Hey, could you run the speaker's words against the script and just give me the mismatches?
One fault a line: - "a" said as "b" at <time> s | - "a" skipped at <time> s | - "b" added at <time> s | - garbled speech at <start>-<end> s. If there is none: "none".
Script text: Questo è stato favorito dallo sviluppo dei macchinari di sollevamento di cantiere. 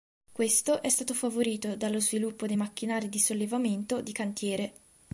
none